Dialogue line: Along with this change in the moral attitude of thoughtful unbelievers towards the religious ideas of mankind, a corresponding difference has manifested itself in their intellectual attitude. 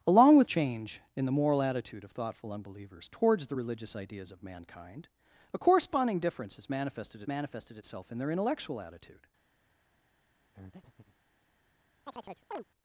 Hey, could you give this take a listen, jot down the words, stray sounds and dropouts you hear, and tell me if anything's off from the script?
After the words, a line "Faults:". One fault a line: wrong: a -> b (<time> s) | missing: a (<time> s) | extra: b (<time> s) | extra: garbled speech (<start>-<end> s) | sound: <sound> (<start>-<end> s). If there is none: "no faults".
Along with change in the moral attitude of thoughtful unbelievers towards the religious ideas of mankind, a corresponding difference has manifested manifested itself in their intellectual attitude.
Faults:
missing: this (0.5 s)
extra: manifested (7.3 s)
sound: breath (10.5-11.2 s)
sound: chirp (12.1-12.6 s)